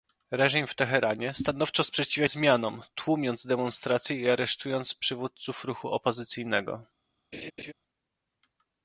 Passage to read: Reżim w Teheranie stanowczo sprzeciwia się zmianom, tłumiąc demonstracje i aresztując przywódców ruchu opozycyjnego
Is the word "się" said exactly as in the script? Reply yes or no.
no